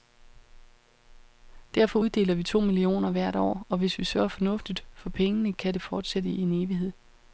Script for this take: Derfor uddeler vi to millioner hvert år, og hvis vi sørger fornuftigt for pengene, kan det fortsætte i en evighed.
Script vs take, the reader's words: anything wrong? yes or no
no